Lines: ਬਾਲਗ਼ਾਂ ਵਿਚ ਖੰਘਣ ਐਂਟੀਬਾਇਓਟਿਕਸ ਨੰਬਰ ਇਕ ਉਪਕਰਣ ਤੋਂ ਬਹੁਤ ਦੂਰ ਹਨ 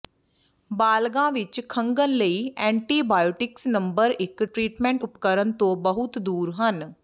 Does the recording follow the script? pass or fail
fail